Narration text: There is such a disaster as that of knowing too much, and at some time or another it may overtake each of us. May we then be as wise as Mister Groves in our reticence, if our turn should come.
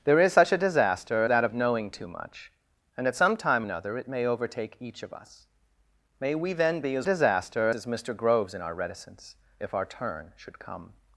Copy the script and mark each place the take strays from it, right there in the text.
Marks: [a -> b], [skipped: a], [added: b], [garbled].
There is such a disaster [skipped: as] that of knowing too much, and at some time [skipped: or] another it may overtake each of us. May we then be as [wise -> disaster] as Mister Groves in our reticence, if our turn should come.